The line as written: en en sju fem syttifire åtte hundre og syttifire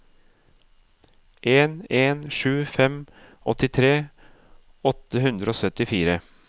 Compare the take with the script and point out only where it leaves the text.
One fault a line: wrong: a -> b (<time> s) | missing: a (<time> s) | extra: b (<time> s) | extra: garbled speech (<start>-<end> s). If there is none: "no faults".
wrong: syttifire -> åttitre (3.5 s)